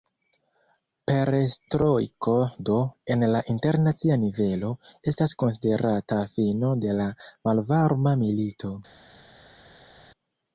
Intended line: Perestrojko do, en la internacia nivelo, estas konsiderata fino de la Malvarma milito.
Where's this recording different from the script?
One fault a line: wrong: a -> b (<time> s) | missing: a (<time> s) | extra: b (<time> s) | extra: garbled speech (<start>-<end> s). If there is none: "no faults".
no faults